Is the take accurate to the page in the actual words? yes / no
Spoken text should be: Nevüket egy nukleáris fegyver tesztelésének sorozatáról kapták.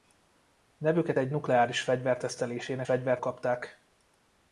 no